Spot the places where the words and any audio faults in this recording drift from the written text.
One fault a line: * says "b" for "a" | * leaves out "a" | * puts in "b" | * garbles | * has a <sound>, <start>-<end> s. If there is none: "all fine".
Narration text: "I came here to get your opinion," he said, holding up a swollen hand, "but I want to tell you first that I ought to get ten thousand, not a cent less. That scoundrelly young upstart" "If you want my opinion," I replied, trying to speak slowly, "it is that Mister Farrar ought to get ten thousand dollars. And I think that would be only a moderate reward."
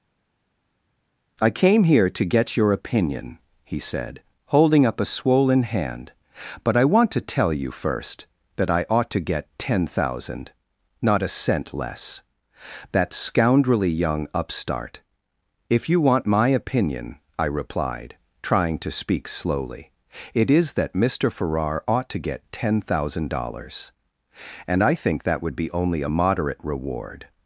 all fine